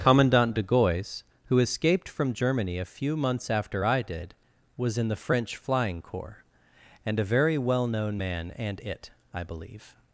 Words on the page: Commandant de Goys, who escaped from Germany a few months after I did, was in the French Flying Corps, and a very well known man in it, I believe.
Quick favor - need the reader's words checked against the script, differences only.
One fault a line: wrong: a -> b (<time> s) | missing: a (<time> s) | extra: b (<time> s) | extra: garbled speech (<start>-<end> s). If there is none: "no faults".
wrong: in -> and (8.6 s)